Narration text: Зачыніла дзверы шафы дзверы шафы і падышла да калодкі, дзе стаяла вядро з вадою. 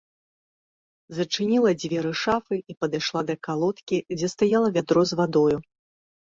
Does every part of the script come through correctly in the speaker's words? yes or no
no